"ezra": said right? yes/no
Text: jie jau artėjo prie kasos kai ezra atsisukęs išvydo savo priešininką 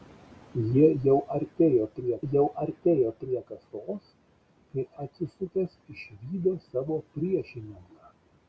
no